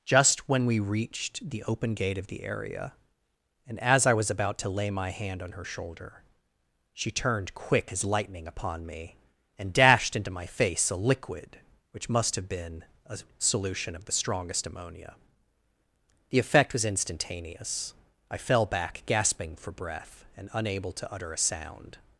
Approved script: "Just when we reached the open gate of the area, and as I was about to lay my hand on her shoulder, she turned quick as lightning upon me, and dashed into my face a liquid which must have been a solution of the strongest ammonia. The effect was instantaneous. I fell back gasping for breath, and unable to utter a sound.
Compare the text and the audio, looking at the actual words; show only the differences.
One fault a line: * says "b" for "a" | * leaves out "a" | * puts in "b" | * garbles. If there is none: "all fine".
all fine